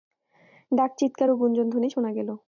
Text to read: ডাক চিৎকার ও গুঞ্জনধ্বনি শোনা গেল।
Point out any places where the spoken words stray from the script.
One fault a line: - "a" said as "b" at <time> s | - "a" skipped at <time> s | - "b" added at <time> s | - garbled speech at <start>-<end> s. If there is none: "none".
none